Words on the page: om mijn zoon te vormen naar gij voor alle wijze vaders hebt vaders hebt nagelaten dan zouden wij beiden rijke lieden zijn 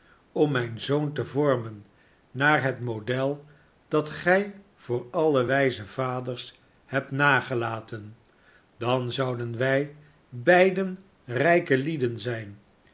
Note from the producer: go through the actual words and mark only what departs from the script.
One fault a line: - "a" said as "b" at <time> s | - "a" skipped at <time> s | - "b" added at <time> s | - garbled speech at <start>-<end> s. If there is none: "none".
- "het model dat" added at 2.6 s
- "vaders hebt" skipped at 7.1 s